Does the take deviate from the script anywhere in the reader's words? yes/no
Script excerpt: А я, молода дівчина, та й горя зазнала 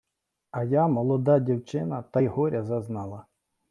no